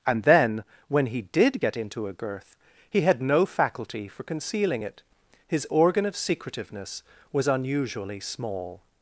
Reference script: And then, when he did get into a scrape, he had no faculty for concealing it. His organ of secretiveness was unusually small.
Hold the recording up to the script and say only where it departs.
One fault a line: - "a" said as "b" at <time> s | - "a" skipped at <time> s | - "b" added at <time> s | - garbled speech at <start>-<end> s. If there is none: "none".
- "scrape" said as "girth" at 2.1 s